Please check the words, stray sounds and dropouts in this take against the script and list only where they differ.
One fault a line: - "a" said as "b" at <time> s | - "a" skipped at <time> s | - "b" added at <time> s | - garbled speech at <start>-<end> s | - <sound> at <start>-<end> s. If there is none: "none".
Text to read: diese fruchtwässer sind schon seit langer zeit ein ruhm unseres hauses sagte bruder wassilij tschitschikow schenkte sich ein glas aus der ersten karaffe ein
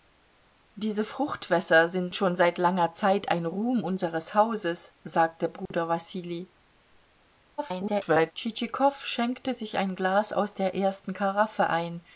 - dropout at 5.7-5.7 s
- garbled speech at 7.6-8.3 s